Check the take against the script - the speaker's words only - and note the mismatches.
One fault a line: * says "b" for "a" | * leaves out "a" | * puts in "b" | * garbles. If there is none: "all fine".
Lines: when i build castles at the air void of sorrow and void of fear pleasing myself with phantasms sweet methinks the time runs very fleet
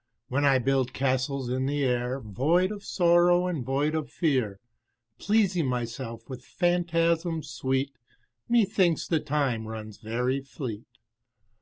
* says "in" for "at"